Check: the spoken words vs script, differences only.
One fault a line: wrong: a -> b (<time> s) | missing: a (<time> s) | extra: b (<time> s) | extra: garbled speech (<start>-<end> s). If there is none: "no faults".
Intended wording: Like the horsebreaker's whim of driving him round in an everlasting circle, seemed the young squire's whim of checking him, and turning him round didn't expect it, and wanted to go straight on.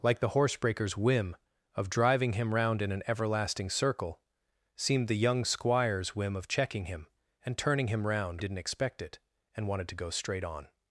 no faults